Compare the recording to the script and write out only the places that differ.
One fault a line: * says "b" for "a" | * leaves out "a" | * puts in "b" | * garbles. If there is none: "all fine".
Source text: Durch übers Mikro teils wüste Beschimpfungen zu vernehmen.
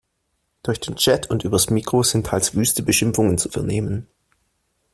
* puts in "den Chat und"
* puts in "sind"